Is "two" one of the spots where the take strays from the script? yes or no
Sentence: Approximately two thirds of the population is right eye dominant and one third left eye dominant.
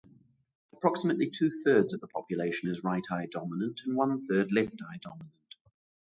no